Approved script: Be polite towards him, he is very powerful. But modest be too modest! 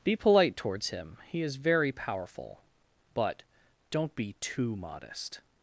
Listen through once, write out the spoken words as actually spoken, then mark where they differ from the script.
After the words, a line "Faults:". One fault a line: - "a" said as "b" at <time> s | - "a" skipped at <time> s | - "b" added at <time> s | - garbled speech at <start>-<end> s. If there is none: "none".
Be polite towards him, he is very powerful. But don't be too modest!
Faults:
- "modest" said as "don't" at 3.9 s